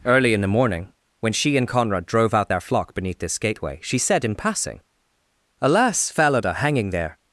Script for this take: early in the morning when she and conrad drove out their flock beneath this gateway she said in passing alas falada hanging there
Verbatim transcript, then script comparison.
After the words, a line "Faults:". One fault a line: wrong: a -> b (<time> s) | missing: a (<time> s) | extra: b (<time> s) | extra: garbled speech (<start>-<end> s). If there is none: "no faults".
early in the morning when she and conrad drove out their flock beneath this gateway she said in passing alas falada hanging there
Faults:
no faults